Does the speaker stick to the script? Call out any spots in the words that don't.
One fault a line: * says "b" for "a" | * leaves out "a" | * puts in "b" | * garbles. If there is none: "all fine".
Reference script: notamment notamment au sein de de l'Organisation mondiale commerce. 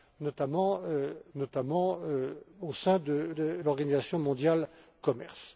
all fine